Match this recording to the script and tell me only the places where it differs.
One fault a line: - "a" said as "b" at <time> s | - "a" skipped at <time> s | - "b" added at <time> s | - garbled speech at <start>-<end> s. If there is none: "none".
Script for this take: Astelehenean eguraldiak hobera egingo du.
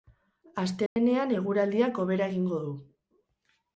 none